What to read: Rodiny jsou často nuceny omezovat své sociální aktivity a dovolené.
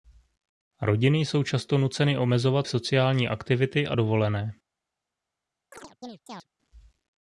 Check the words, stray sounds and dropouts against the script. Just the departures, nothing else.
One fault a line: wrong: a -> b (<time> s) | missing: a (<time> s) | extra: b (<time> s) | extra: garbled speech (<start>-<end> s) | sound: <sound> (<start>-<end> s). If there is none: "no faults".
missing: své (2.7 s)
sound: chirp (5.7-6.5 s)